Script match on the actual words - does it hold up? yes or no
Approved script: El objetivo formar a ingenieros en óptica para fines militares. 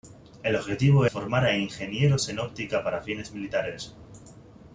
yes